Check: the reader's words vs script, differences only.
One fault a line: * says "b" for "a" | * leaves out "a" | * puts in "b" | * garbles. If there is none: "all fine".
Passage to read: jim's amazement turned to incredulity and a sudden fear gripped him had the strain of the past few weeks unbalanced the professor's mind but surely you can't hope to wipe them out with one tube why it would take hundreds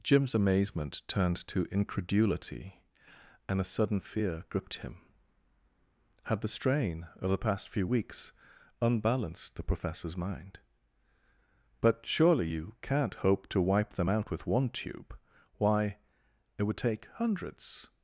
all fine